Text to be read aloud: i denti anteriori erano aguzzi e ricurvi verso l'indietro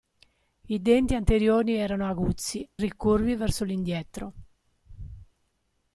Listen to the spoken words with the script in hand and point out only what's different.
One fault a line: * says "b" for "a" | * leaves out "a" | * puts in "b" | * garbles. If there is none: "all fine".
* leaves out "e"